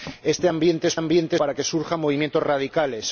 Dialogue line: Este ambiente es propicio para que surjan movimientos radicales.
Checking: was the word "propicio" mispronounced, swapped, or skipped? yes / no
yes